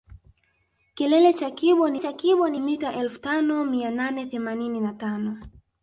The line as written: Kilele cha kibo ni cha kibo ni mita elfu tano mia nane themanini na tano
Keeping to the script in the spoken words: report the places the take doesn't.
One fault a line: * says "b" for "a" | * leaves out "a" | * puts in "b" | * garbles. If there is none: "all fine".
all fine